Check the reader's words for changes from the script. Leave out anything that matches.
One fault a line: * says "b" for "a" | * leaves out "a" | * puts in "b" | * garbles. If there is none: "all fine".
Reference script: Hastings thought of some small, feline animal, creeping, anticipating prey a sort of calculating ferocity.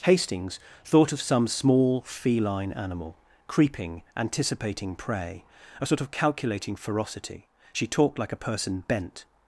* puts in "She talked like a person bent"